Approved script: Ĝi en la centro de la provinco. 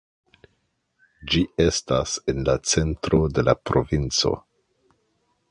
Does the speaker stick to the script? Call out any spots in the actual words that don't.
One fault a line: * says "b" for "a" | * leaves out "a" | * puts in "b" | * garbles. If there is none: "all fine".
* puts in "estas"